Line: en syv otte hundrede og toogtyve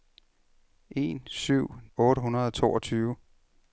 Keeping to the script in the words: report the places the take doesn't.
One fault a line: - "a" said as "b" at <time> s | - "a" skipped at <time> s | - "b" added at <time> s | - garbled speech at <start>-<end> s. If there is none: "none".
none